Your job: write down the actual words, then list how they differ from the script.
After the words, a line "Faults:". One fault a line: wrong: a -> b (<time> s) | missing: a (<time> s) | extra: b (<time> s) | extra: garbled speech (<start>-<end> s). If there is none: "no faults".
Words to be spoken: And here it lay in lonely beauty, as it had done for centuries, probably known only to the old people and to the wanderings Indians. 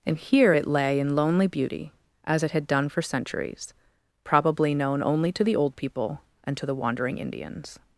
And here it lay in lonely beauty, as it had done for centuries, probably known only to the old people and to the wandering Indians.
Faults:
wrong: wanderings -> wandering (6.7 s)